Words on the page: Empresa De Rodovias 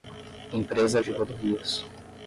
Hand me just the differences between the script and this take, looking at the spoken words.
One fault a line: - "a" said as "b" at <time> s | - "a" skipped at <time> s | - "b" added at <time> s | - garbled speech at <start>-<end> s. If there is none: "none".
none